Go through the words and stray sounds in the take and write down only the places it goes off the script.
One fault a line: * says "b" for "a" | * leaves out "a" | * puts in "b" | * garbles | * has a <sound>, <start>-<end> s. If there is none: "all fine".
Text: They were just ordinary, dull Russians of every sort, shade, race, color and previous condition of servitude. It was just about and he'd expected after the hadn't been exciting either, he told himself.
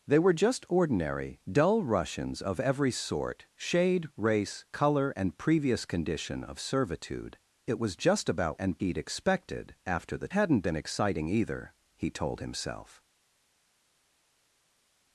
all fine